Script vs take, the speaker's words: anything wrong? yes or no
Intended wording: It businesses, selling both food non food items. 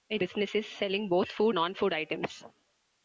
no